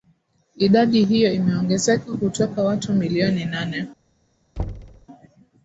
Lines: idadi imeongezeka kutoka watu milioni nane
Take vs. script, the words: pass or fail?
fail